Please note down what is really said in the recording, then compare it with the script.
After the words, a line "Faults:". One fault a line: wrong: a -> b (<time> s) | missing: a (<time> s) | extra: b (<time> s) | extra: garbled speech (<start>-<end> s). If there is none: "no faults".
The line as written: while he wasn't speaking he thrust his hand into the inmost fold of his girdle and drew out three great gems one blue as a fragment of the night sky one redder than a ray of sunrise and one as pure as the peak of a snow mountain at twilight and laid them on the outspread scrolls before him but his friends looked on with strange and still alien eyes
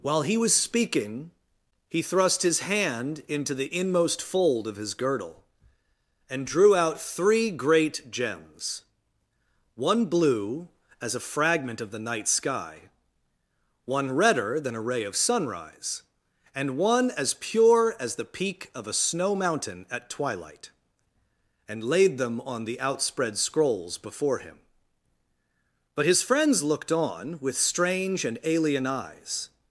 while he was speaking he thrust his hand into the inmost fold of his girdle and drew out three great gems one blue as a fragment of the night sky one redder than a ray of sunrise and one as pure as the peak of a snow mountain at twilight and laid them on the outspread scrolls before him but his friends looked on with strange and alien eyes
Faults:
wrong: wasn't -> was (0.4 s)
missing: still (28.4 s)